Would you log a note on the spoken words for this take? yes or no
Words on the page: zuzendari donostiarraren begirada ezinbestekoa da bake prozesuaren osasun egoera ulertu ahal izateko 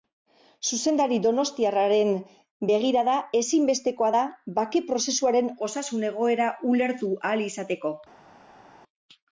no